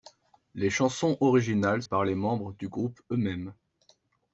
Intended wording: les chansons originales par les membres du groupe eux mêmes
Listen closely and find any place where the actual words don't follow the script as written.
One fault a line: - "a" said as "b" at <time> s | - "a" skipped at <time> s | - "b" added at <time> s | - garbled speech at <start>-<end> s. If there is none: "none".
none